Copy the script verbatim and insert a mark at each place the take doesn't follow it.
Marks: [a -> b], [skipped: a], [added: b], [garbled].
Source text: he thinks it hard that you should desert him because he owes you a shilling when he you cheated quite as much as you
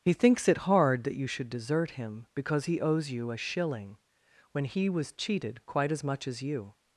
he thinks it hard that you should desert him because he owes you a shilling when he [you -> was] cheated quite as much as you